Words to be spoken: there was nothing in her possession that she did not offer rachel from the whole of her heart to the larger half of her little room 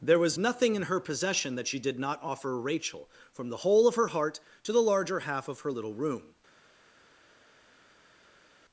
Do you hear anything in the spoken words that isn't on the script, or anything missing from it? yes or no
no